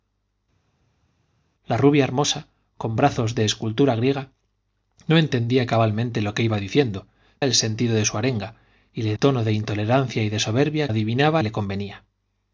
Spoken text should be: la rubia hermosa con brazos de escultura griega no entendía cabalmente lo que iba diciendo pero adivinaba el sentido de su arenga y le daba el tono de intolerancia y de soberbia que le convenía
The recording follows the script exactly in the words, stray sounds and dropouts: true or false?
false